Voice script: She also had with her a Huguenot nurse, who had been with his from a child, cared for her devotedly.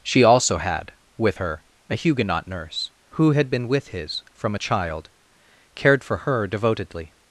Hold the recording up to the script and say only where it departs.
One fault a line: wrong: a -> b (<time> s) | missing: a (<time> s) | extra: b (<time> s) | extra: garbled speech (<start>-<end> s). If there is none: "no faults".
no faults